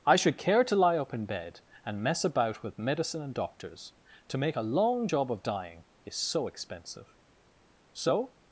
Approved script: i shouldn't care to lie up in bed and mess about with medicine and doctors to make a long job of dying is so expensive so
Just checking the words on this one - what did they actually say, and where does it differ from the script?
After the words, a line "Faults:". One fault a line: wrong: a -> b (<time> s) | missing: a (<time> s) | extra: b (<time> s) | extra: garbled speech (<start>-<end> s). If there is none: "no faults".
i should care to lie up in bed and mess about with medicine and doctors to make a long job of dying is so expensive so
Faults:
wrong: shouldn't -> should (0.1 s)